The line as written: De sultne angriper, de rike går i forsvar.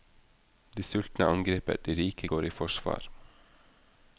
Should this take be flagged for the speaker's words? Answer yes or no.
no